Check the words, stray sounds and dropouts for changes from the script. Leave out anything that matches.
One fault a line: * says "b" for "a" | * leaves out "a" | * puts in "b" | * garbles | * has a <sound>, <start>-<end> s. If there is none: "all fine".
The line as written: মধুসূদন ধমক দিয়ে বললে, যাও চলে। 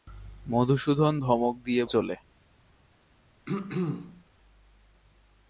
* leaves out "বললে যাও"
* has a throat clearing, 3.5-4.2 s